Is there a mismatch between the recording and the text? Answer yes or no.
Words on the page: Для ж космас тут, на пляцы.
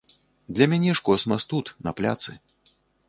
yes